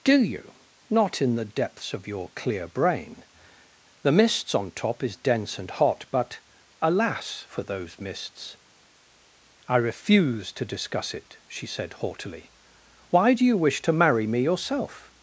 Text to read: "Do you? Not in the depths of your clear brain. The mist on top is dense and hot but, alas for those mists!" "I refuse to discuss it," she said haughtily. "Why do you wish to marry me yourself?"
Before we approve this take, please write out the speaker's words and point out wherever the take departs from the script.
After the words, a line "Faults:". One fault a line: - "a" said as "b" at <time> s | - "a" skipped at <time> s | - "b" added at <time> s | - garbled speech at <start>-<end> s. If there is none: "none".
"Do you? Not in the depths of your clear brain. The mists on top is dense and hot but, alas for those mists!" "I refuse to discuss it," she said haughtily. "Why do you wish to marry me yourself?"
Faults:
- "mist" said as "mists" at 4.1 s